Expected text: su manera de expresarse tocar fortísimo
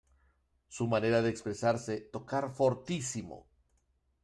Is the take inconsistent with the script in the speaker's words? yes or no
no